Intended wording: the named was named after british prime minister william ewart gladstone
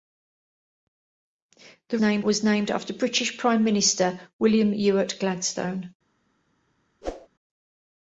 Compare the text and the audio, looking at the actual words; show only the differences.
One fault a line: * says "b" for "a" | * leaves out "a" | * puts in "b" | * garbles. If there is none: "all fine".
all fine